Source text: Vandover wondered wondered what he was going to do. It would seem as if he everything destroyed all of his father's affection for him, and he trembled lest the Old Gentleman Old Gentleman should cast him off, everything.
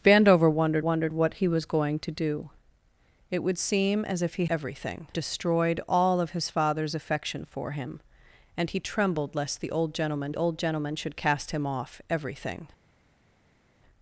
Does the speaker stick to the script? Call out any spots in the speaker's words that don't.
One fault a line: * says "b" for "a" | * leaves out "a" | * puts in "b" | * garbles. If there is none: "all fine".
all fine